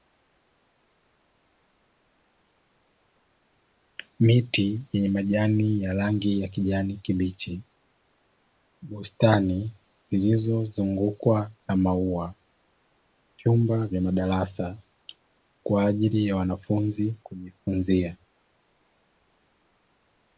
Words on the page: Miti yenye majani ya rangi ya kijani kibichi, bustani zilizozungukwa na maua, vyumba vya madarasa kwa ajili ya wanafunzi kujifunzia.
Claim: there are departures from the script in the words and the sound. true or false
false